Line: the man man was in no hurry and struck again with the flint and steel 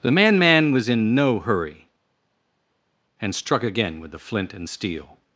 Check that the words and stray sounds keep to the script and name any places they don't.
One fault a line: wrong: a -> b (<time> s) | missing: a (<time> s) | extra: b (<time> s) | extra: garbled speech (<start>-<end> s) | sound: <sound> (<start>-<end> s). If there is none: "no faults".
no faults